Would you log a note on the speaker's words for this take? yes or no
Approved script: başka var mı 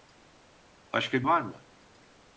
no